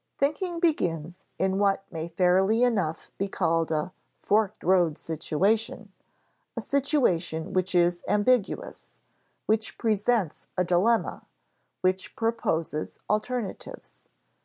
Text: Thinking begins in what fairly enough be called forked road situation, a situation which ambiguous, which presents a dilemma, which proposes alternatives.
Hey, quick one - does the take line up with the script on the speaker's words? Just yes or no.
no